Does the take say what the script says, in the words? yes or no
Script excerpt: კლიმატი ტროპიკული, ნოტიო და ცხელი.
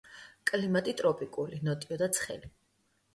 yes